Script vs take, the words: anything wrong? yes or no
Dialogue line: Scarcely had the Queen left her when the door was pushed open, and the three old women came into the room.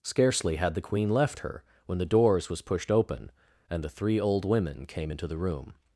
yes